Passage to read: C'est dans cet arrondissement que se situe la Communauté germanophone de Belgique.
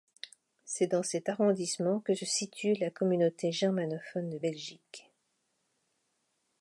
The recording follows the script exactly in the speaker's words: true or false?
true